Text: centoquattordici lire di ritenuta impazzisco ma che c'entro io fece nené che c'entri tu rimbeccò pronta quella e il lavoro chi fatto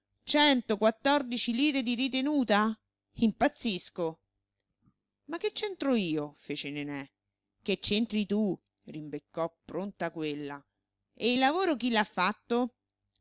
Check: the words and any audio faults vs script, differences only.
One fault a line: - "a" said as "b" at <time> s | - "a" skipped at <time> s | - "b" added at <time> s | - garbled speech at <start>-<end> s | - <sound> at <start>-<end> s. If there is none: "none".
- "l'ha" added at 11.9 s